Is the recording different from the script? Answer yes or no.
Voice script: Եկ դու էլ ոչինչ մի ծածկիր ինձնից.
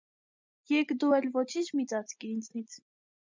no